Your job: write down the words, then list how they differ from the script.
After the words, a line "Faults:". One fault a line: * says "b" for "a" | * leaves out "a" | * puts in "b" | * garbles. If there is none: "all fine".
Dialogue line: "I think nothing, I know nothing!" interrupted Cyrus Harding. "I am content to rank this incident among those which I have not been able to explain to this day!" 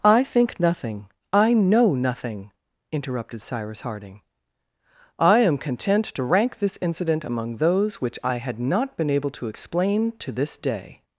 "I think nothing, I know nothing!" interrupted Cyrus Harding. "I am content to rank this incident among those which I had not been able to explain to this day!"
Faults:
* says "had" for "have"